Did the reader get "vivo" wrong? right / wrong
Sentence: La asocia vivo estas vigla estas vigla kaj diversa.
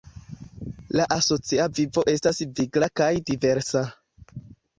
right